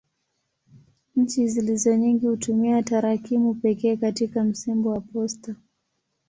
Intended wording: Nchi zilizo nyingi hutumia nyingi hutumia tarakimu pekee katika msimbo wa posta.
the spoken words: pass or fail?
fail